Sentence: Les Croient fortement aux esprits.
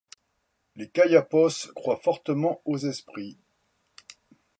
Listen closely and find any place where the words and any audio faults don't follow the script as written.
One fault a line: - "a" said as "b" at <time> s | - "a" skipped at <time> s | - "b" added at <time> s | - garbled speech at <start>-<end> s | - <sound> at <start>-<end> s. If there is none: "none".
- "Kayapos" added at 0.9 s